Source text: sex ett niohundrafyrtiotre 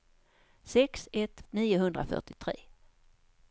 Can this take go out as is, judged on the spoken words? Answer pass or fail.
pass